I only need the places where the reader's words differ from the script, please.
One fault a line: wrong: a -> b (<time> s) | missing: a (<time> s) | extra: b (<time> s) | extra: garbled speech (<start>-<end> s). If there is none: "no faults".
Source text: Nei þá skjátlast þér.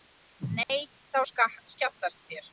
no faults